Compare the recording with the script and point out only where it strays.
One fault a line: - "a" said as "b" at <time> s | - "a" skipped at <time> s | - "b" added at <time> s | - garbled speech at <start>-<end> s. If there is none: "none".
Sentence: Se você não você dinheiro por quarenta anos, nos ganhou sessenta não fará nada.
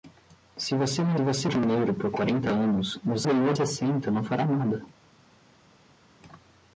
none